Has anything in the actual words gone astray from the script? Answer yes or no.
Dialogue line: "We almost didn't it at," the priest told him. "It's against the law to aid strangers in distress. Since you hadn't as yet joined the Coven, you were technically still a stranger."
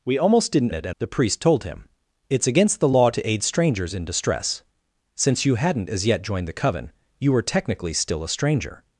no